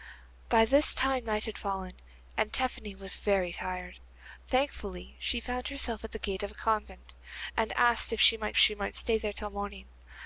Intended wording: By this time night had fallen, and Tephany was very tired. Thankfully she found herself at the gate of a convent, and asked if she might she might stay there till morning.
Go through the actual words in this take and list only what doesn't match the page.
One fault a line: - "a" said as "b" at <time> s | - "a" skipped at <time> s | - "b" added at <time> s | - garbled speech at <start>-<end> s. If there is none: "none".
none